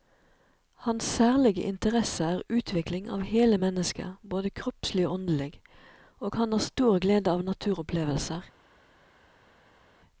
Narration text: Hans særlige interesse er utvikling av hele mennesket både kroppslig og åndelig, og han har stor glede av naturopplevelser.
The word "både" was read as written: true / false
true